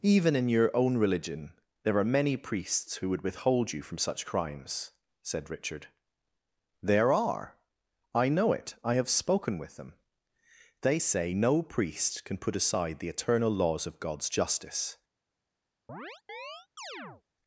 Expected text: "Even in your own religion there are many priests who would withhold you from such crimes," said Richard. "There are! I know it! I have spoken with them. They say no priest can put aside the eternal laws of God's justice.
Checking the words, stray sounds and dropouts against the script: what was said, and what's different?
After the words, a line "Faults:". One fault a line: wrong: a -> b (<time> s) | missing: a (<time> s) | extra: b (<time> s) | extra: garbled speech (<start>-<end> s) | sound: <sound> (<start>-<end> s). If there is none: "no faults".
"Even in your own religion there are many priests who would withhold you from such crimes," said Richard. "There are! I know it! I have spoken with them. They say no priest can put aside the eternal laws of God's justice.
Faults:
sound: chirp (15.9-17.2 s)